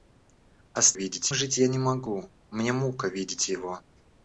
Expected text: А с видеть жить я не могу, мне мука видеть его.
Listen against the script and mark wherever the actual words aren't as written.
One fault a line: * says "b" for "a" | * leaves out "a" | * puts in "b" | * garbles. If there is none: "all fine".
all fine